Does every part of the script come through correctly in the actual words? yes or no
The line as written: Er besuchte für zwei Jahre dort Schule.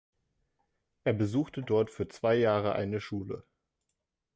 no